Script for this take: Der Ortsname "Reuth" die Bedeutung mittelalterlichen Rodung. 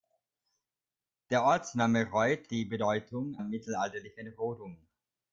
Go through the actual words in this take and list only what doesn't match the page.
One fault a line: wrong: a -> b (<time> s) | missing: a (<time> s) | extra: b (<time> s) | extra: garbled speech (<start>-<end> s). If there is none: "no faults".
no faults